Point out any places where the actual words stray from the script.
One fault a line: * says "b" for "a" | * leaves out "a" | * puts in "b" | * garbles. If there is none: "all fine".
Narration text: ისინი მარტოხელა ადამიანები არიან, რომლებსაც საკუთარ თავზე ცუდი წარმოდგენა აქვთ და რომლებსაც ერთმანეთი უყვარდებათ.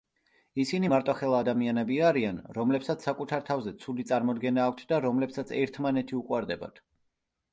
all fine